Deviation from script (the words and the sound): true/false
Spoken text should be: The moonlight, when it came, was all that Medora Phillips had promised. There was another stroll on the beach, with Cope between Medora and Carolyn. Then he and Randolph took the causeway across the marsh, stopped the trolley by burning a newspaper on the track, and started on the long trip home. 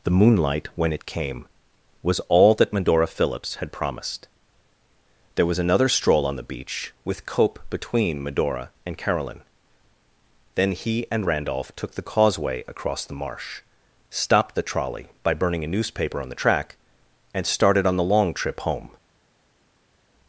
false